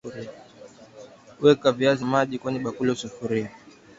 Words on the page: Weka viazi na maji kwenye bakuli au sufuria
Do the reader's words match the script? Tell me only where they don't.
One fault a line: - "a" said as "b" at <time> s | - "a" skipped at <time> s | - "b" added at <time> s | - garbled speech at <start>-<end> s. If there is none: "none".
- "na" skipped at 2.0 s